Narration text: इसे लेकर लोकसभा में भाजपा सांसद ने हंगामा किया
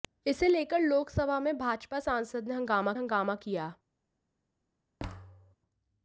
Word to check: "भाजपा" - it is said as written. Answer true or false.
true